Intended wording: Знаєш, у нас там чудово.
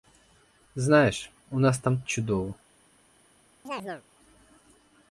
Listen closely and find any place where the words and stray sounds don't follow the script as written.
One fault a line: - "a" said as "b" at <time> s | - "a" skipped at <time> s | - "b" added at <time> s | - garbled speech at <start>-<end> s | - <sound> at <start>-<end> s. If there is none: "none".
- chirp at 3.6-4.0 s